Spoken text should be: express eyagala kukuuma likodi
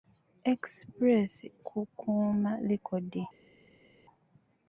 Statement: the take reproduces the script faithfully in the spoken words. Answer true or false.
false